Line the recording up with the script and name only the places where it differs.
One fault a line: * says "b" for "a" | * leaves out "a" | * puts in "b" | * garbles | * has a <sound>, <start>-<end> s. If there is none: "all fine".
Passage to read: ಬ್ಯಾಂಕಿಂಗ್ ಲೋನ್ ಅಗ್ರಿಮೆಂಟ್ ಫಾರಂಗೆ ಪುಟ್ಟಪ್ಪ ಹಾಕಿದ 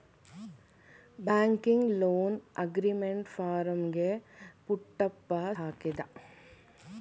all fine